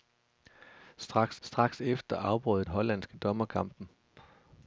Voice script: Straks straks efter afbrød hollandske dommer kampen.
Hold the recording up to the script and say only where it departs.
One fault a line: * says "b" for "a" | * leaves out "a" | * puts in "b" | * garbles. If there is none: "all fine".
all fine